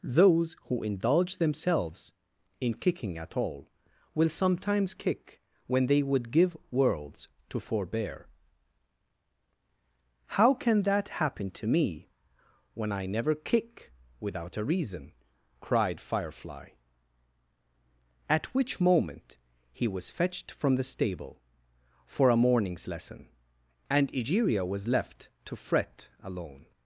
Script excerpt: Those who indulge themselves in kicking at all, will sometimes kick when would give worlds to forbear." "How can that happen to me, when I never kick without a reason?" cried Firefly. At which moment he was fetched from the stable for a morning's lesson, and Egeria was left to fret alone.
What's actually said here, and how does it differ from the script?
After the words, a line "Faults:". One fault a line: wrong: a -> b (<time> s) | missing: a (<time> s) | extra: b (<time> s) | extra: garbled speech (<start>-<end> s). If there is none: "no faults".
Those who indulge themselves in kicking at all, will sometimes kick when they would give worlds to forbear." "How can that happen to me, when I never kick without a reason?" cried Firefly. At which moment he was fetched from the stable for a morning's lesson, and Egeria was left to fret alone.
Faults:
extra: they (5.9 s)